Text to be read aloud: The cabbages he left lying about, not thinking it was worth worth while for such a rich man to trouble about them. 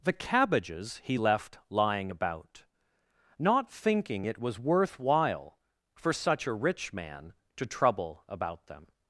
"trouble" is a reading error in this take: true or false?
false